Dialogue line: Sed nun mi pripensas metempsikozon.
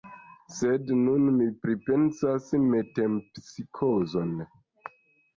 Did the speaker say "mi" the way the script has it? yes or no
yes